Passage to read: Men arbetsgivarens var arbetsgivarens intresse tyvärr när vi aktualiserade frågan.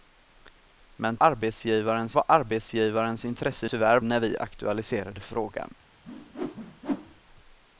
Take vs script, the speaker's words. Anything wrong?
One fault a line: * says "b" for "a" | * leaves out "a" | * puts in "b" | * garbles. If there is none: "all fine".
all fine